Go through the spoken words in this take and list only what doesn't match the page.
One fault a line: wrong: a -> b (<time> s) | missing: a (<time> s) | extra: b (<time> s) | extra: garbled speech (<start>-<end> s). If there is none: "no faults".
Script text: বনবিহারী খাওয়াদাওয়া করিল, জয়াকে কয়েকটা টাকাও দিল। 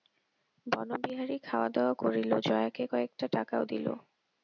no faults